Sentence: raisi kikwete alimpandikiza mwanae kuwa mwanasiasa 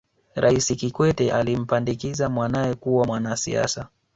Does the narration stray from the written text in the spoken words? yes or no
no